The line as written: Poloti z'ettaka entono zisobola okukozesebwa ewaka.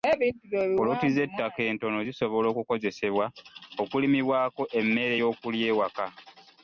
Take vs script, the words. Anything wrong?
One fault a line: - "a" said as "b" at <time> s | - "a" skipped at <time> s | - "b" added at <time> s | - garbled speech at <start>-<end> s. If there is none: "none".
- "okulimibwako emmere y'okulya" added at 3.8 s